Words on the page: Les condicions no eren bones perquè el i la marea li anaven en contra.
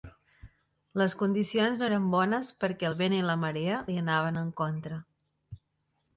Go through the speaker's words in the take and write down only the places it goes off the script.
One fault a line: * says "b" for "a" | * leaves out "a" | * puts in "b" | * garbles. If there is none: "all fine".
* puts in "vent"